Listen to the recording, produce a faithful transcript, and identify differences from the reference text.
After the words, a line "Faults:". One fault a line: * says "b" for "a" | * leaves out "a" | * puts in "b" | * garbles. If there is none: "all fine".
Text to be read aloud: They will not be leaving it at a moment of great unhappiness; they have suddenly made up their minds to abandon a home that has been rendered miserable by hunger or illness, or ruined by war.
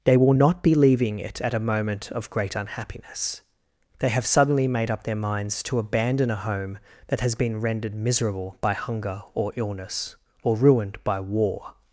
They will not be leaving it at a moment of great unhappiness; they have suddenly made up their minds to abandon a home that has been rendered miserable by hunger or illness, or ruined by war.
Faults:
all fine